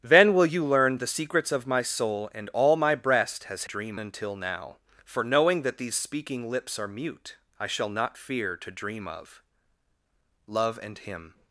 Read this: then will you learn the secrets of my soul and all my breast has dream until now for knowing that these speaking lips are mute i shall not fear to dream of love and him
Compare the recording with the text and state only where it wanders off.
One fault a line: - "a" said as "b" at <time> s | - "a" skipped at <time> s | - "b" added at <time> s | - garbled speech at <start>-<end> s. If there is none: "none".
none